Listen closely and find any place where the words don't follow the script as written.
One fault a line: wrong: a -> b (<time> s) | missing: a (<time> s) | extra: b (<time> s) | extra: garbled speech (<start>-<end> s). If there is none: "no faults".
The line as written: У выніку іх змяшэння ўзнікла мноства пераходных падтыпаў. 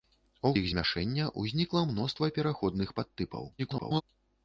missing: выніку (0.5 s)
extra: garbled speech (3.6-4.0 s)